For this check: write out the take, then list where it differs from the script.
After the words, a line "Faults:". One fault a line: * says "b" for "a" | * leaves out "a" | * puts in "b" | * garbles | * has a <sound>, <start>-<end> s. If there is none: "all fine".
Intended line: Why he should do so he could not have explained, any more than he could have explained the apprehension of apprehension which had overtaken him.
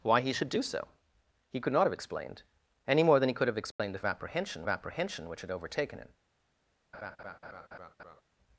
Why he should do so he could not have explained, any more than he could have explained the apprehension of apprehension which had overtaken him.
Faults:
* has a dropout, 3.7-3.8 s
* has a laugh, 6.9-8.2 s